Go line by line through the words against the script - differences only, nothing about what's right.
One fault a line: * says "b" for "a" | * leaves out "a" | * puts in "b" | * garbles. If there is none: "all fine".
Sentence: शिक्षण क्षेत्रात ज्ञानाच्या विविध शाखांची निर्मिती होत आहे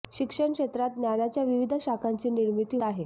* leaves out "होत"